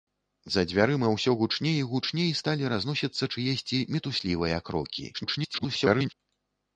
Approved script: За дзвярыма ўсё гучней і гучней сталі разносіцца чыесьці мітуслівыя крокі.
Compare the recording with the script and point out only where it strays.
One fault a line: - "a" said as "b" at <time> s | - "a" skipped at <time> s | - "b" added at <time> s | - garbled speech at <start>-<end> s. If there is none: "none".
- garbled speech at 5.1-6.1 s